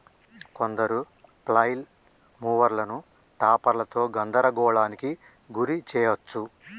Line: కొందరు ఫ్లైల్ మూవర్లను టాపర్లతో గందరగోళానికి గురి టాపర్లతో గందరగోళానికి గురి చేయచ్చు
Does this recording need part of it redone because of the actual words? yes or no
yes